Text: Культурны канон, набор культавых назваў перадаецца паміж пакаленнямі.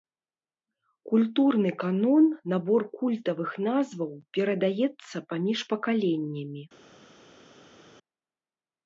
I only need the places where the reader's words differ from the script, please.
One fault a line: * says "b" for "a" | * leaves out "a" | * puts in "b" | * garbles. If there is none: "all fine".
all fine